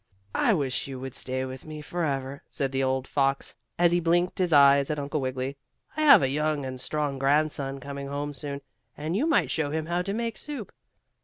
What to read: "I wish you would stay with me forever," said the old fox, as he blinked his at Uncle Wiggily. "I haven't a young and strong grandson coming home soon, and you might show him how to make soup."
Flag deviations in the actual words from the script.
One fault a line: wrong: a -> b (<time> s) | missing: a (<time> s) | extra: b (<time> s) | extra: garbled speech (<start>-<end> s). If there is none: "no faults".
extra: eyes (4.5 s)
wrong: haven't -> have (6.0 s)